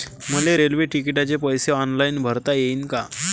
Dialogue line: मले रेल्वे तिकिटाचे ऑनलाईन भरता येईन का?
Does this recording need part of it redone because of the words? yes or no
yes